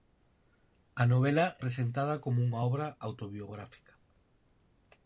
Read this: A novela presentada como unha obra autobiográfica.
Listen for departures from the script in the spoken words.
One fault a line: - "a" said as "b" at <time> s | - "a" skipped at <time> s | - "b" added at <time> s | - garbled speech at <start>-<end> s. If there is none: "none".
none